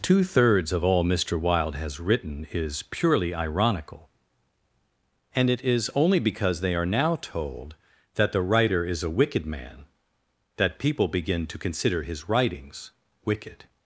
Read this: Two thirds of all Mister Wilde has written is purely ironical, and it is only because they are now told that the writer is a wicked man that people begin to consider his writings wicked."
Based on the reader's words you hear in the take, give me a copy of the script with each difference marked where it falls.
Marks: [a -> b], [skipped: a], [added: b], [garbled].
Two thirds of all Mister Wilde has written is purely ironical, and it is only because they are now told that the writer is a wicked man that people begin to consider his writings wicked."